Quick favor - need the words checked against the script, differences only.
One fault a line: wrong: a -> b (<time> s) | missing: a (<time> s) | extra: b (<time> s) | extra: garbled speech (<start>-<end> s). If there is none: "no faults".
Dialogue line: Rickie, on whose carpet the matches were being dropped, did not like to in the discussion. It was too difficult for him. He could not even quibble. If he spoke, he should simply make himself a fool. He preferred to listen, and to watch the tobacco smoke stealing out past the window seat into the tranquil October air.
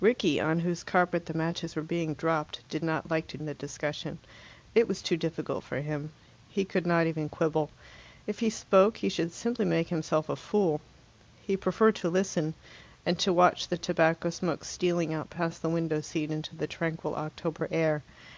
no faults